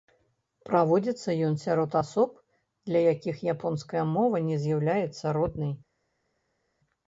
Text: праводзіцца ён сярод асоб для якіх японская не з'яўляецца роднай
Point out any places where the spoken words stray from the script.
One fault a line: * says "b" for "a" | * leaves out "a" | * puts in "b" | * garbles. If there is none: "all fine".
* puts in "мова"